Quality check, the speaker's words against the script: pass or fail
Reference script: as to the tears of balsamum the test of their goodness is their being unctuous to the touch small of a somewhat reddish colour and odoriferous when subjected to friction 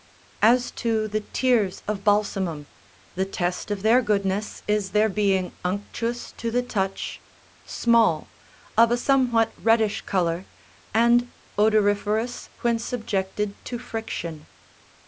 pass